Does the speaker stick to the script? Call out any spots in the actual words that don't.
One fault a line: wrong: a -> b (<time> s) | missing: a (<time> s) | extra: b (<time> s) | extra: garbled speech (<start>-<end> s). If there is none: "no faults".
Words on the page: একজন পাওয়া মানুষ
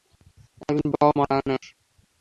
no faults